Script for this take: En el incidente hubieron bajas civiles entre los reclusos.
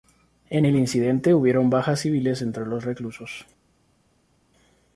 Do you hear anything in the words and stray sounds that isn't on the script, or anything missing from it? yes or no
no